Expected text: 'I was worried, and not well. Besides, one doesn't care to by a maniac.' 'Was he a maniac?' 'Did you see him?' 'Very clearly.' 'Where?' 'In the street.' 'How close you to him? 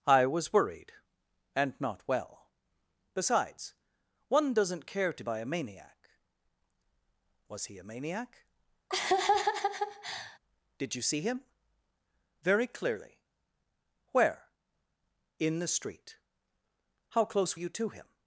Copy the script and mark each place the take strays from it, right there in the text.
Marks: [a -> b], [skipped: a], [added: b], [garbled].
'I was worried, and not well. Besides, one doesn't care to by a maniac.' 'Was he a maniac?' 'Did you see him?' 'Very clearly.' 'Where?' 'In the street.' 'How close you to him?